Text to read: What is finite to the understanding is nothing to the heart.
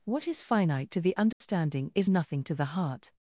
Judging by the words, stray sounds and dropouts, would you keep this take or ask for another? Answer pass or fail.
fail